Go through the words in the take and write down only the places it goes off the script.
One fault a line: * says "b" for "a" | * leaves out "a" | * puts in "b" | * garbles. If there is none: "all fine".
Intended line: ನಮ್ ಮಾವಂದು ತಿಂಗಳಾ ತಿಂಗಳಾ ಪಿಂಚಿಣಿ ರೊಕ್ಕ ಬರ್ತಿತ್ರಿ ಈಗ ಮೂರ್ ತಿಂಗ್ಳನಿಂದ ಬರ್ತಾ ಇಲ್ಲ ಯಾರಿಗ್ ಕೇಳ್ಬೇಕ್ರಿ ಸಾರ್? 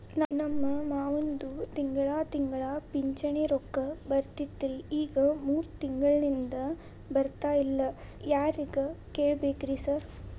all fine